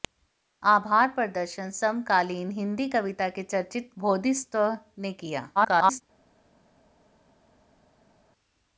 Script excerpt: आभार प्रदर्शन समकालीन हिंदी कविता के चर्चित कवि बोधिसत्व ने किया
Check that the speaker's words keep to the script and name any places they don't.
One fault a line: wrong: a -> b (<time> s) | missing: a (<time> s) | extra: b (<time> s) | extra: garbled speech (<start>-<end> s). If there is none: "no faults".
missing: कवि (3.9 s)
extra: garbled speech (5.6-6.0 s)